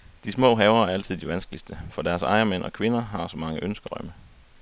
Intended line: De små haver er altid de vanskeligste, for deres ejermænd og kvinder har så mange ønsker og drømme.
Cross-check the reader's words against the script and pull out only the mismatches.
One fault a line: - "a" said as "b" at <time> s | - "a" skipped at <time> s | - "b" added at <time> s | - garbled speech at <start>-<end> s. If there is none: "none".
- "og" skipped at 3.9 s